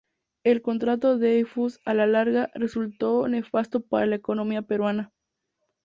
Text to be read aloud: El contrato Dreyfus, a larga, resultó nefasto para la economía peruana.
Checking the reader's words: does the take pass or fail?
fail